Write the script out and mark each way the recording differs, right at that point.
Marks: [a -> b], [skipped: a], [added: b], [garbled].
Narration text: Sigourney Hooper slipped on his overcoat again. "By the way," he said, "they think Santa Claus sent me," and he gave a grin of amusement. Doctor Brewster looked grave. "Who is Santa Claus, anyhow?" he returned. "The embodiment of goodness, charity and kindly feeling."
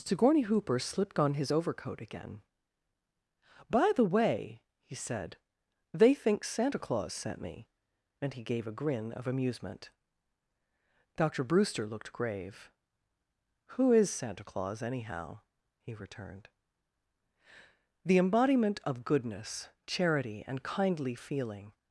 Sigourney Hooper slipped on his overcoat again. "By the way," he said, "they think Santa Claus sent me," and he gave a grin of amusement. Doctor Brewster looked grave. "Who is Santa Claus, anyhow?" he returned. "The embodiment of goodness, charity and kindly feeling."